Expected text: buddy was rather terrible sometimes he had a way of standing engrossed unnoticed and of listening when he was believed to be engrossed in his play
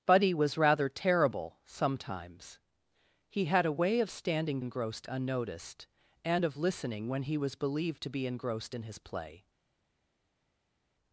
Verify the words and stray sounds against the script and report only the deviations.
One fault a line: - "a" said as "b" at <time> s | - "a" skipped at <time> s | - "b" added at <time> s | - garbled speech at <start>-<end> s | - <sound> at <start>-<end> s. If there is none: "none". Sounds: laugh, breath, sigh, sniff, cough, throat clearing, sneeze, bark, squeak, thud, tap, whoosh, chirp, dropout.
none